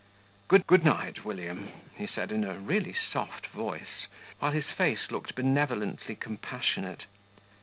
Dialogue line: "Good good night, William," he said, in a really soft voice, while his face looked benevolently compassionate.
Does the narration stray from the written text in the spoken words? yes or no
no